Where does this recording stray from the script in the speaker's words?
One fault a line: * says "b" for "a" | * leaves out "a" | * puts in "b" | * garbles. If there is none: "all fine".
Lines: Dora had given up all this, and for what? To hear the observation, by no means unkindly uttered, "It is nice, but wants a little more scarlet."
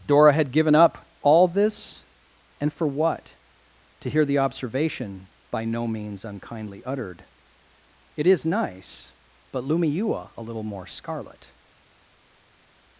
* says "lumiua" for "wants"